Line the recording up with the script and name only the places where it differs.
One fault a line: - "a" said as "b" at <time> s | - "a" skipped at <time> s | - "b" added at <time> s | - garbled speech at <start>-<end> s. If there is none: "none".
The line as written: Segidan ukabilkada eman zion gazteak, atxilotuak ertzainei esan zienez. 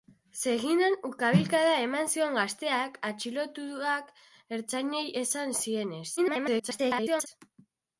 - garbled speech at 6.2-7.3 s